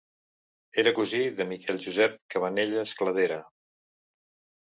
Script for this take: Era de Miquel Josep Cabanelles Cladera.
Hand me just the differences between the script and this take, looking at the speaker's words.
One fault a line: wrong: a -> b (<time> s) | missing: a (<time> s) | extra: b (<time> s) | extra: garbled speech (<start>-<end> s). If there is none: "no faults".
extra: cosí (1.0 s)